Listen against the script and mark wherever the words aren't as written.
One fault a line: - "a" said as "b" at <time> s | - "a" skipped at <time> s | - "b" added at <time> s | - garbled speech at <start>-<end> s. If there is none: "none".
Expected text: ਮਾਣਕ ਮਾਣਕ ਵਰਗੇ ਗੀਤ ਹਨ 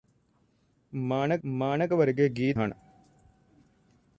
none